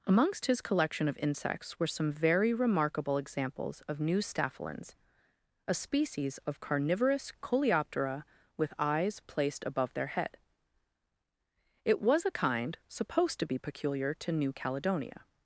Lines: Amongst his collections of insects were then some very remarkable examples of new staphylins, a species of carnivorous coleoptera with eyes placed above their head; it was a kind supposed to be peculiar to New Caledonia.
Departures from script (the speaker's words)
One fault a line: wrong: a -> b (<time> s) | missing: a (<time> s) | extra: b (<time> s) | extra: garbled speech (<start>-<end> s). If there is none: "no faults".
wrong: collections -> collection (0.6 s)
missing: then (1.9 s)